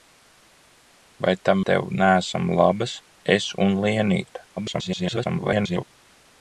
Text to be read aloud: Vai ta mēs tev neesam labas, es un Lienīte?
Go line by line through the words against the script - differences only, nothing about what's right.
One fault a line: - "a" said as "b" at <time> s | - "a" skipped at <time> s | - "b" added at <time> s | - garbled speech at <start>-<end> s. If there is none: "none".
- "mēs" skipped at 1.6 s
- garbled speech at 4.6-5.8 s